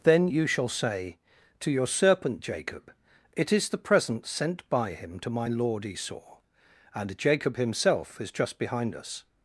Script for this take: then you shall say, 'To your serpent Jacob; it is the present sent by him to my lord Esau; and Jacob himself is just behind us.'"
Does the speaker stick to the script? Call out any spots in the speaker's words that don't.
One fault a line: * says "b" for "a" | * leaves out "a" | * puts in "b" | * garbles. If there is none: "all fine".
all fine